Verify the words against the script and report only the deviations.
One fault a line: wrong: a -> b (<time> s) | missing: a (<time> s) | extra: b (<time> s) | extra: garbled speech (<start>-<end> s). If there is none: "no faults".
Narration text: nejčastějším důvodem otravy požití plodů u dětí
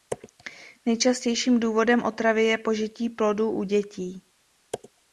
extra: je (2.4 s)